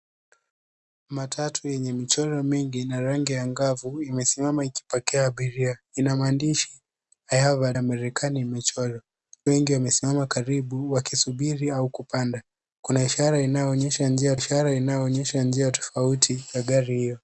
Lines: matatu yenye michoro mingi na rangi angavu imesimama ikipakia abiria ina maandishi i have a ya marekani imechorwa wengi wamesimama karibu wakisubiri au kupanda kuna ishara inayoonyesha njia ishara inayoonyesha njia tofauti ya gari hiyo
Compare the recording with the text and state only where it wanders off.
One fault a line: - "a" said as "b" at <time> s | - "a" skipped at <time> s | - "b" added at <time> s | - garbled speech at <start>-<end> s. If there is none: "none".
none